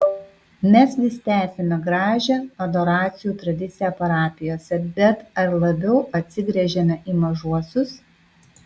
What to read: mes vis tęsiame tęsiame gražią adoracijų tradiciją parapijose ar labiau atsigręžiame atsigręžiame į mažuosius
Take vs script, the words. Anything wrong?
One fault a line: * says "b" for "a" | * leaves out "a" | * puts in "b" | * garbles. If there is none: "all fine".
* leaves out "tęsiame"
* puts in "bet"
* leaves out "atsigręžiame"